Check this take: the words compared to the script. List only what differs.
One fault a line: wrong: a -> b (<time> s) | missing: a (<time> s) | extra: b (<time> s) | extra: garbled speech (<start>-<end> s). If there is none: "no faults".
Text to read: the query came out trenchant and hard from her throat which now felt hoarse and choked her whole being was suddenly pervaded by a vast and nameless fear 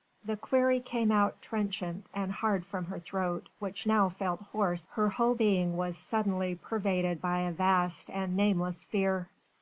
missing: and choked (4.9 s)